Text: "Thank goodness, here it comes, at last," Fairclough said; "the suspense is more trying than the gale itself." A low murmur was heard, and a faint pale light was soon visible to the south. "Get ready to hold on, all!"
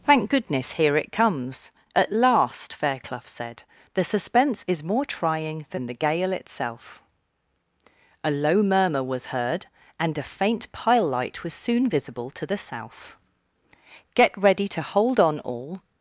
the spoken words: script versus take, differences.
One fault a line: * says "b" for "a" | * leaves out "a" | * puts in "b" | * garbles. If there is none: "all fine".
* says "pile" for "pale"